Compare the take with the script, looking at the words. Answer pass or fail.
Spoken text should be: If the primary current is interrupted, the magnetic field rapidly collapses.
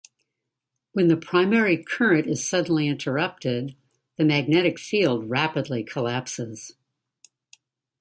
fail